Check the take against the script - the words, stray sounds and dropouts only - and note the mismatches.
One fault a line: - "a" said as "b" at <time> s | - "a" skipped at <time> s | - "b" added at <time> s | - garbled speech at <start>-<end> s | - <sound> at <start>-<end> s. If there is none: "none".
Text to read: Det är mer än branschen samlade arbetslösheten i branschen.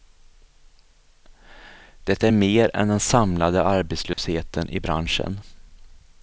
- "branschen" said as "den" at 2.9 s
- dropout at 4.1-4.2 s